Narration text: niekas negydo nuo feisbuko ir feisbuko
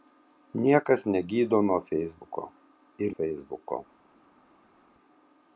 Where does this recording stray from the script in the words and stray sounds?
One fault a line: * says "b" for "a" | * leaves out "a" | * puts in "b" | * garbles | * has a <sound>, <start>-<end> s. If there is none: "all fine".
all fine